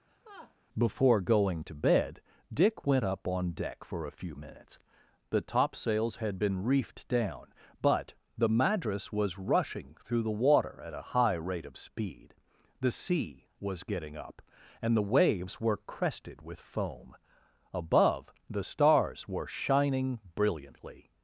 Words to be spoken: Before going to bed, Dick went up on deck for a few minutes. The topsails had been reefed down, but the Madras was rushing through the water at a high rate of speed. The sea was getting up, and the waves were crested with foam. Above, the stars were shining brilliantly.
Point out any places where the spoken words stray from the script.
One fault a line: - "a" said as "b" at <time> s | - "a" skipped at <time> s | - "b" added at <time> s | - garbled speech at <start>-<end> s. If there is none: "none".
none